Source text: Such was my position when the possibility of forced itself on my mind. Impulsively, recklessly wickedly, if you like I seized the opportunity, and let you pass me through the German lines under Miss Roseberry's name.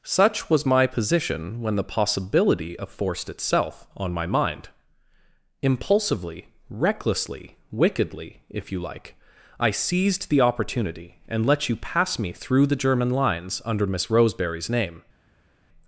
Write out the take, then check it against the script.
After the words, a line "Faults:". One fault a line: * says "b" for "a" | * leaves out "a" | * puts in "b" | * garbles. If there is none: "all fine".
Such was my position when the possibility of forced itself on my mind. Impulsively, recklessly wickedly, if you like I seized the opportunity, and let you pass me through the German lines under Miss Roseberry's name.
Faults:
all fine